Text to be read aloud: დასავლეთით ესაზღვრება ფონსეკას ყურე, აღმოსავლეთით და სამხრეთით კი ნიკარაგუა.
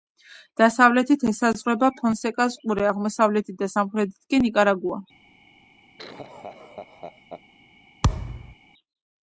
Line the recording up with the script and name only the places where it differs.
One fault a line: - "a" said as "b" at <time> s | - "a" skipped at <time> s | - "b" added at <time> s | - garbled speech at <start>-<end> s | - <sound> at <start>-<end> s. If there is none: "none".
- laugh at 6.0-7.4 s
- thud at 8.0-8.5 s